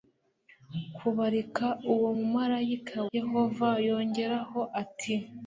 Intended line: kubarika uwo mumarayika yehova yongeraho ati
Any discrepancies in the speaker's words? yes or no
no